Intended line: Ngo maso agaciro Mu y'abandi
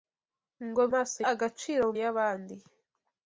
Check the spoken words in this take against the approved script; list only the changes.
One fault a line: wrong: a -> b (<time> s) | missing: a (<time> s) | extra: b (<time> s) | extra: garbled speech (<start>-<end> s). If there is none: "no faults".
no faults